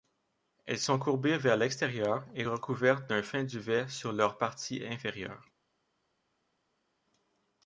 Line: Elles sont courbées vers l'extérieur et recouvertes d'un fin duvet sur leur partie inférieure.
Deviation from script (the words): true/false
false